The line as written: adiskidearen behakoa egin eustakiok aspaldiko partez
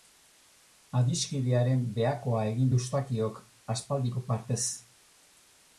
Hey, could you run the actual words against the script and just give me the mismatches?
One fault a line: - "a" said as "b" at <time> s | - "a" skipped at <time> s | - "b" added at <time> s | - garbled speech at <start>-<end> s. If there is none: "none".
none